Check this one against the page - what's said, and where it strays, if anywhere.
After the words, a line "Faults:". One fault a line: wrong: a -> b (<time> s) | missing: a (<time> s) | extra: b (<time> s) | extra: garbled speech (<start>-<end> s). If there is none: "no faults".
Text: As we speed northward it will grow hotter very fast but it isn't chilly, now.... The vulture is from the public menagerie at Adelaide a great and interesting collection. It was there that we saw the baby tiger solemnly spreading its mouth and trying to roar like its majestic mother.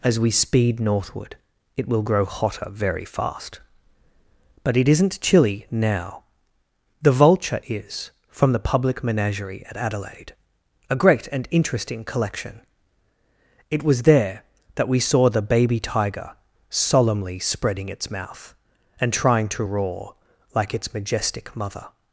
As we speed northward it will grow hotter very fast but it isn't chilly, now.... The vulture is from the public menagerie at Adelaide a great and interesting collection. It was there that we saw the baby tiger solemnly spreading its mouth and trying to roar like its majestic mother.
Faults:
no faults